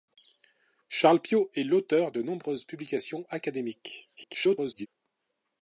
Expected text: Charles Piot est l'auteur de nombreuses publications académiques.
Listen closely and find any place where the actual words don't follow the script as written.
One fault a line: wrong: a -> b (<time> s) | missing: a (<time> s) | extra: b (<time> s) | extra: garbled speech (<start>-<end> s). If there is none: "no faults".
extra: garbled speech (4.2-4.9 s)